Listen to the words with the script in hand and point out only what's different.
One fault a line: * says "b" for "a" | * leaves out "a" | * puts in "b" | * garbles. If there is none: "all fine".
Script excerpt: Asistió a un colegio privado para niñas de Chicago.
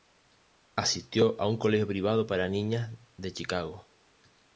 all fine